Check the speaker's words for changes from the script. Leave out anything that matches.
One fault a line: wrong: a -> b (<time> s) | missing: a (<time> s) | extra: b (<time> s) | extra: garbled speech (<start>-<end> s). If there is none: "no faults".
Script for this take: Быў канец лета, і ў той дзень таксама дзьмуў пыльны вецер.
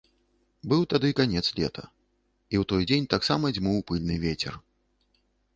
extra: тады (0.9 s)